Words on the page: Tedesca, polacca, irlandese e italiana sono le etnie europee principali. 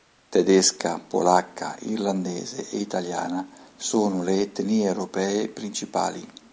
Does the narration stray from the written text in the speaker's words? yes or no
no